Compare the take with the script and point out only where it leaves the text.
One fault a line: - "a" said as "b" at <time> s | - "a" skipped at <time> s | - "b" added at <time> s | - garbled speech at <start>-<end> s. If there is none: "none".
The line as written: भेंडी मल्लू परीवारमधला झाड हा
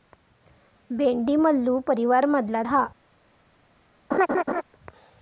- "झाड" skipped at 2.6 s